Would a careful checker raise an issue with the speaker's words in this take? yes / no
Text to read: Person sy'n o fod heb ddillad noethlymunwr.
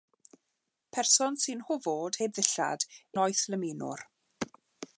no